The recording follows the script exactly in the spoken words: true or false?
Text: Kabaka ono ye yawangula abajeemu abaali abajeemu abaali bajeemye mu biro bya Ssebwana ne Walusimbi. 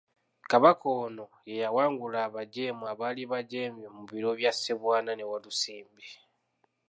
false